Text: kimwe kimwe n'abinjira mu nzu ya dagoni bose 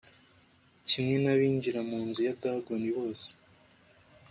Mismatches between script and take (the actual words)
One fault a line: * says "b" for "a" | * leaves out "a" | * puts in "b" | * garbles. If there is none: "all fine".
* leaves out "kimwe"